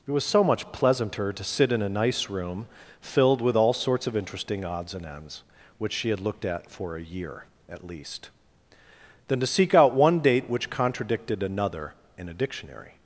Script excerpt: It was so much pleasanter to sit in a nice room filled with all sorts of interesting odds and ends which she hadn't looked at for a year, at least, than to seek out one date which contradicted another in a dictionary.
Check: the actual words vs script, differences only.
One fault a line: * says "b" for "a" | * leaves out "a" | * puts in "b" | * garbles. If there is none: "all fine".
* says "had" for "hadn't"